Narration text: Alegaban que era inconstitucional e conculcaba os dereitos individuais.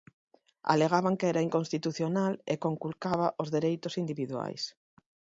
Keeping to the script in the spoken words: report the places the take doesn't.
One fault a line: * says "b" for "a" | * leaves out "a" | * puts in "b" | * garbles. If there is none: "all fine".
all fine